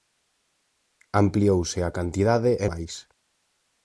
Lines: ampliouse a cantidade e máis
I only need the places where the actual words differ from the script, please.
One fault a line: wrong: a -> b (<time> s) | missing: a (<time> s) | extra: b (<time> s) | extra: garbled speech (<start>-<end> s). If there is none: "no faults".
no faults